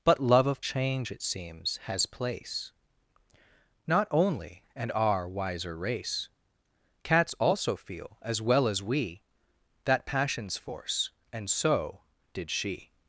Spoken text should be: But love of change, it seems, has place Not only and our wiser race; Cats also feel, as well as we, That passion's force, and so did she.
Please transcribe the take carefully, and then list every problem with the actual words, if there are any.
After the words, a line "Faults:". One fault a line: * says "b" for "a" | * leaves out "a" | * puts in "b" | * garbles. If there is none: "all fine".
But love of change, it seems, has place Not only and our wiser race; Cats also feel, as well as we, That passion's force, and so did she.
Faults:
all fine